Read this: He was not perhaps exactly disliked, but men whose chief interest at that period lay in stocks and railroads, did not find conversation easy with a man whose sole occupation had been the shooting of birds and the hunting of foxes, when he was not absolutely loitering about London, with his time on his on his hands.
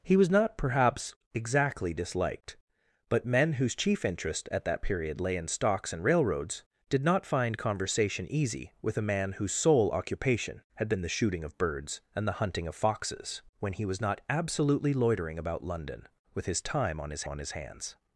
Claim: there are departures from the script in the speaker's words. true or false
false